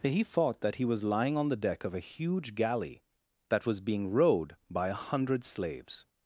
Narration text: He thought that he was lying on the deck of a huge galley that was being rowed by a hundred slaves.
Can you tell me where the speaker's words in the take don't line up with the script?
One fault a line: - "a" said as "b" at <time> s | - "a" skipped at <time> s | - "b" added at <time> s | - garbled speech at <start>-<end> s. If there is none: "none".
none